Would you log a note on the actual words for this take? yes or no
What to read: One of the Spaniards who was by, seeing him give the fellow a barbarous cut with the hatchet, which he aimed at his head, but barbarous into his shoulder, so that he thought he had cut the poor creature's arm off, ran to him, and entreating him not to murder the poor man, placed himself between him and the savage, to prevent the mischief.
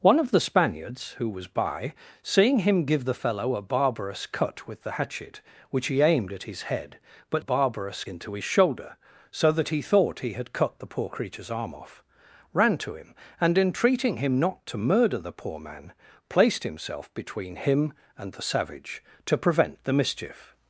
no